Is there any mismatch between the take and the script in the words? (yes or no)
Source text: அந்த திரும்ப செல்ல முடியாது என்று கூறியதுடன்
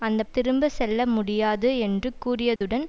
no